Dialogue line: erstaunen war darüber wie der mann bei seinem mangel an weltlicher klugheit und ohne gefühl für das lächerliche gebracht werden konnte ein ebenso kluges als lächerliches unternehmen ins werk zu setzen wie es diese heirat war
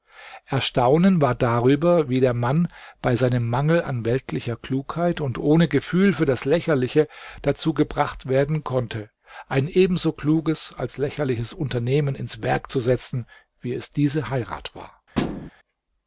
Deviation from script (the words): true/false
true